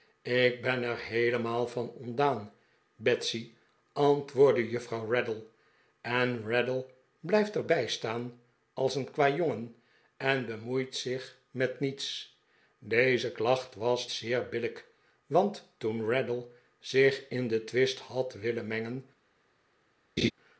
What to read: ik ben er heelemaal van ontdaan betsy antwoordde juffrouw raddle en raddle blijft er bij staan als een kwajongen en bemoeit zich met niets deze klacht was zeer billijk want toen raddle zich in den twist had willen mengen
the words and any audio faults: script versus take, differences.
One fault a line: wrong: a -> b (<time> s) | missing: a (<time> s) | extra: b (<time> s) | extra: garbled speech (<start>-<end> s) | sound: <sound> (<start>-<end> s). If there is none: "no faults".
sound: laugh (20.2-20.3 s)